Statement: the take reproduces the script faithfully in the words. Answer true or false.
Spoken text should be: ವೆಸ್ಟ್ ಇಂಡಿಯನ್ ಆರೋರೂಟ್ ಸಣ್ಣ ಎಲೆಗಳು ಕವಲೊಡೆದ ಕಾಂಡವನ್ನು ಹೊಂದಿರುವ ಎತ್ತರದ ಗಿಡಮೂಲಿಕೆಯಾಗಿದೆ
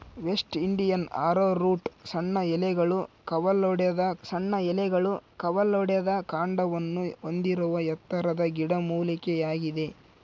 false